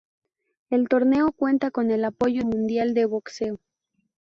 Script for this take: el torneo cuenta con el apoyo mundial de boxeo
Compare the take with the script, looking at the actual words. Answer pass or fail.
pass